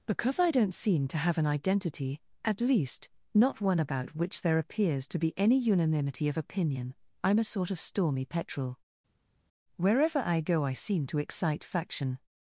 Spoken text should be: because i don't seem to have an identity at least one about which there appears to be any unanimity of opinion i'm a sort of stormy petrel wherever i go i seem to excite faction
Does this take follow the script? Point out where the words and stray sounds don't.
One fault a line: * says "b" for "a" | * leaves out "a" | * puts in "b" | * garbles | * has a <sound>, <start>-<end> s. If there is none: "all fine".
* puts in "not"